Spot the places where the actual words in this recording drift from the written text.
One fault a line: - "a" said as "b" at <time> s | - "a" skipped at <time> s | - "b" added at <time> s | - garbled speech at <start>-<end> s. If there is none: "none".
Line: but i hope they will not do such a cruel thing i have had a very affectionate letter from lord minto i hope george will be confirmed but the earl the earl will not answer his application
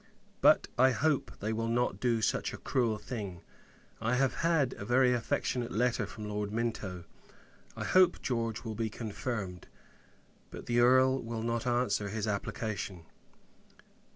- "the earl" skipped at 11.2 s